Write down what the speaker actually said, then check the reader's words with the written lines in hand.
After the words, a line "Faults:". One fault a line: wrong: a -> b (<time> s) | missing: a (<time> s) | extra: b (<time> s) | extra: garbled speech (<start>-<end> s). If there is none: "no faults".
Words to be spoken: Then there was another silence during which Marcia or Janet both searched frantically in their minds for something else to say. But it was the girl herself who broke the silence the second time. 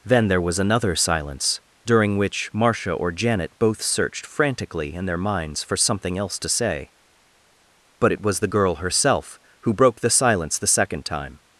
Then there was another silence during which Marcia or Janet both searched frantically in their minds for something else to say. But it was the girl herself who broke the silence the second time.
Faults:
no faults